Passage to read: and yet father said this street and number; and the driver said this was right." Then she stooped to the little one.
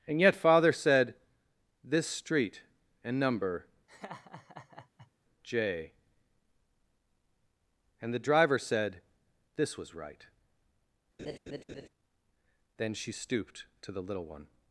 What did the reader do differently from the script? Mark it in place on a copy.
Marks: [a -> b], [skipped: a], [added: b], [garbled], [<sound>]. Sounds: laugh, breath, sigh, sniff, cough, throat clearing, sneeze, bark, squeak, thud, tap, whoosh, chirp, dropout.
and yet father said this street and number; [laugh] [added: j] and the driver said this was right." [laugh] Then she stooped to the little one.